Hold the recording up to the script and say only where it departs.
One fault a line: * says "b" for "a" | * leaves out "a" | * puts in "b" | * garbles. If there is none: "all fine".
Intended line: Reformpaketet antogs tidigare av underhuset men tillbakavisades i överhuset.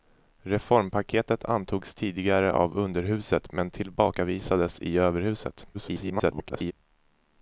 * garbles